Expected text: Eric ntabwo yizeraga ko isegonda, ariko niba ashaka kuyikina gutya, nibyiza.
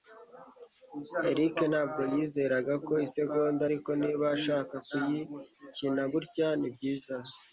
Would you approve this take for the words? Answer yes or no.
yes